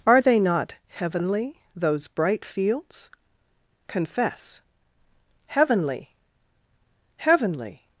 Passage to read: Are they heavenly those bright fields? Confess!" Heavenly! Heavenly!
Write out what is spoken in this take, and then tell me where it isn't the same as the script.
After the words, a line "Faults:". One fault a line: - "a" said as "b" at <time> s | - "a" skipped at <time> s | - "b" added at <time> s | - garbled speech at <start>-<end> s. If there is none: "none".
Are they not heavenly those bright fields? Confess!" Heavenly! Heavenly!
Faults:
- "not" added at 0.4 s